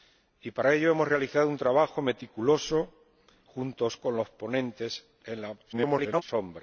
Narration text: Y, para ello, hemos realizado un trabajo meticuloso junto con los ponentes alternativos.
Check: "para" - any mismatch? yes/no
no